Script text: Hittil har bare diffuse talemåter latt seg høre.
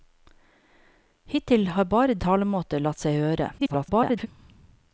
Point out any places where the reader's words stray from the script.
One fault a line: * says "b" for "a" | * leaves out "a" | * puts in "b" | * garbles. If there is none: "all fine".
* leaves out "diffuse"
* garbles